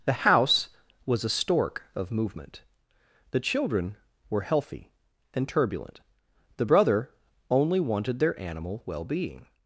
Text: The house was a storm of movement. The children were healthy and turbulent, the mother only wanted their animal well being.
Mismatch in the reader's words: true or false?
true